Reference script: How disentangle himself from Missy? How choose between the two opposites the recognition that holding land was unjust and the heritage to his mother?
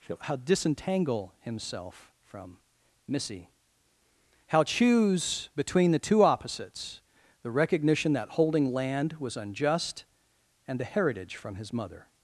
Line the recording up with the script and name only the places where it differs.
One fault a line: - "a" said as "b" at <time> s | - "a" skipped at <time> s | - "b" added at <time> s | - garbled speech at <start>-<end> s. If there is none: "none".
- "to" said as "from" at 11.4 s